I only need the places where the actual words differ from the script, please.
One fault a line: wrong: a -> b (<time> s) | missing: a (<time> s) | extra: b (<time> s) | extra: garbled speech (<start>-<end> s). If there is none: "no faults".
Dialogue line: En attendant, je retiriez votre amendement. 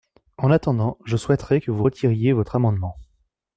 extra: souhaiterais que vous (1.1 s)